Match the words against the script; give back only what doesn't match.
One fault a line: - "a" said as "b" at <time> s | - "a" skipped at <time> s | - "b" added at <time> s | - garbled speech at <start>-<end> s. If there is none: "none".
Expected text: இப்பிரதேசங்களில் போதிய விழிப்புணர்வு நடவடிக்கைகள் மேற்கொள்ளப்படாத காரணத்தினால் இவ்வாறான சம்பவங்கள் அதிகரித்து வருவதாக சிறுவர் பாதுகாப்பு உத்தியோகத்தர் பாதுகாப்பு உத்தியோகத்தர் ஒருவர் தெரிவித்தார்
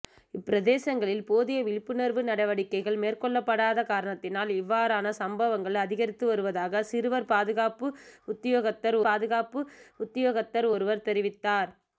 none